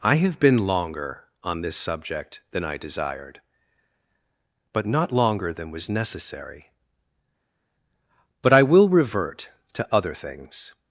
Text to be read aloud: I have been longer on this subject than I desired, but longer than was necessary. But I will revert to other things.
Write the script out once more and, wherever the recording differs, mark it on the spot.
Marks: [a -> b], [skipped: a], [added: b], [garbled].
I have been longer on this subject than I desired, but [added: not] longer than was necessary. But I will revert to other things.